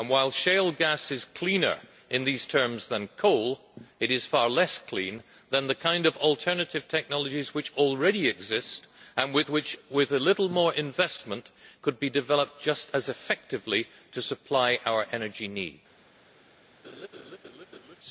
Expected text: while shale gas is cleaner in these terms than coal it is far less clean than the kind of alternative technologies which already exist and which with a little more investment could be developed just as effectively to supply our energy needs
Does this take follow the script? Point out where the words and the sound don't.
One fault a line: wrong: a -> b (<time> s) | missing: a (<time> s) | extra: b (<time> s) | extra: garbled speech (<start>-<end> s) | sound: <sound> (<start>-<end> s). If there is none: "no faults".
sound: laugh (16.8-18.0 s)